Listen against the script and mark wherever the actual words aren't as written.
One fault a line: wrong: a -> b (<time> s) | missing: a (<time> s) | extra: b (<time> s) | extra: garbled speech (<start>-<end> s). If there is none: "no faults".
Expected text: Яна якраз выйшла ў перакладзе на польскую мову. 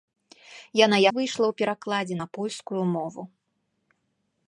missing: якраз (1.0 s)